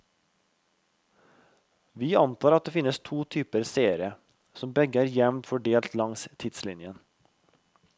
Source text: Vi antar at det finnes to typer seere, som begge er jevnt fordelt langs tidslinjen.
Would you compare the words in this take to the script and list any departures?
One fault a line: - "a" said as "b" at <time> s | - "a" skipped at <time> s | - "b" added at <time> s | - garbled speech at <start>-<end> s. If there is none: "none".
none